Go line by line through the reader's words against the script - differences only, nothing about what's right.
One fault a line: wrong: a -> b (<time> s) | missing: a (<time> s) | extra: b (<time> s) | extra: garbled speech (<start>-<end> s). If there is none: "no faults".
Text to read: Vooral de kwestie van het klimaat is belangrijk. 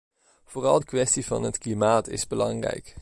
no faults